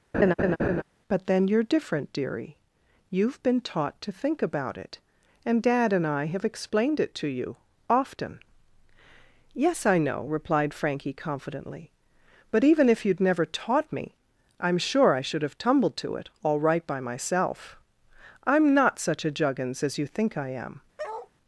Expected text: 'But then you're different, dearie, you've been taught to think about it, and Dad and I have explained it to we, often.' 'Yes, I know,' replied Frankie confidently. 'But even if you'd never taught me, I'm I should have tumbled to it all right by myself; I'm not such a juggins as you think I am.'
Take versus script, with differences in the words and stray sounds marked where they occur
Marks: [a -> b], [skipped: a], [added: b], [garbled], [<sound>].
[laugh] 'But then you're different, dearie, you've been taught to think about it, and Dad and I have explained it to [we, -> you] often.' 'Yes, I know,' replied Frankie confidently. 'But even if you'd never taught me, I'm [added: sure] I should have tumbled to it all right by myself; I'm not such a juggins as you think I am.' [bark]